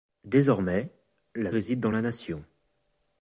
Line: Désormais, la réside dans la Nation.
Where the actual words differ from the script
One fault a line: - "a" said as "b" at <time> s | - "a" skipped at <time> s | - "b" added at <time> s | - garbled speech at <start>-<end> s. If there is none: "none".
none